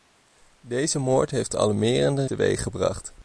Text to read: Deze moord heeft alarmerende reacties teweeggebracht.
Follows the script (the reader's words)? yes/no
no